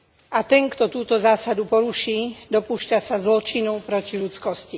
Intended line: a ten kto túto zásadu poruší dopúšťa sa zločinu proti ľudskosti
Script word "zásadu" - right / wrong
right